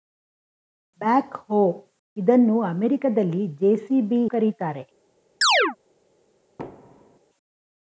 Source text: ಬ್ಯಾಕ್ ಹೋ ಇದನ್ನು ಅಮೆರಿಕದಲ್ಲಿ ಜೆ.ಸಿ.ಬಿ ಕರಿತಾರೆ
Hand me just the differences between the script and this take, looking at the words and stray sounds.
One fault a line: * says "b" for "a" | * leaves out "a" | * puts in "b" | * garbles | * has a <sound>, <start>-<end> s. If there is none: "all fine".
* has a chirp, 5.4-5.8 s
* has a thud, 6.6-7.2 s